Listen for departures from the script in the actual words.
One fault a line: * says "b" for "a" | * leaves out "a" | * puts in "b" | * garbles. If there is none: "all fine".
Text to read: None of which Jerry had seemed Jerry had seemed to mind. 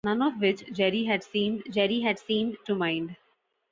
all fine